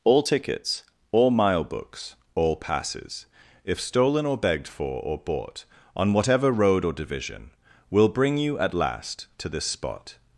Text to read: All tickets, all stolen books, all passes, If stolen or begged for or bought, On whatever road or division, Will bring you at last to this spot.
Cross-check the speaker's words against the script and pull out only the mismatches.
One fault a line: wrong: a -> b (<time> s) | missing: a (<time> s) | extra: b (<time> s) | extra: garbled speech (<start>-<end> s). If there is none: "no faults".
wrong: stolen -> mile (1.3 s)